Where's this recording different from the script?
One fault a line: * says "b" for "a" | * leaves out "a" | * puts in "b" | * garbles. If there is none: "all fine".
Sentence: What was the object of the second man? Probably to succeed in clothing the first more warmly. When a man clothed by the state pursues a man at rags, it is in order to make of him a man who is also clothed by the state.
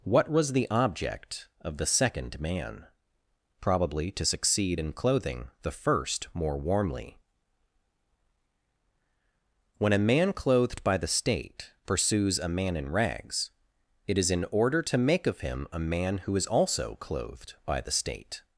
* says "in" for "at"